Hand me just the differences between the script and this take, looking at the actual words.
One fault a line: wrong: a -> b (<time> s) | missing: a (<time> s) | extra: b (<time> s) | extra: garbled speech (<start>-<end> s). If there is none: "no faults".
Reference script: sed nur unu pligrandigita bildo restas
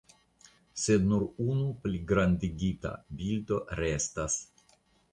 no faults